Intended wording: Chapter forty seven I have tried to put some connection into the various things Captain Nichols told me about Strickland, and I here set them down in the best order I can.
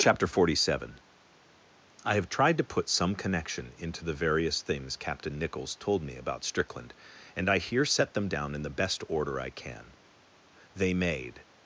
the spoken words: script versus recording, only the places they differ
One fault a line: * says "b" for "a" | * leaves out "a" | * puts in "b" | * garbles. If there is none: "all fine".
* puts in "They made"